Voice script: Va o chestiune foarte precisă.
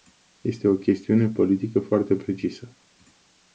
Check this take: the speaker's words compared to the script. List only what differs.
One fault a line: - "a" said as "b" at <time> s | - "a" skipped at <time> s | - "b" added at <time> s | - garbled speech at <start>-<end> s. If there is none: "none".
- "Va" said as "Este" at 0.4 s
- "politică" added at 1.3 s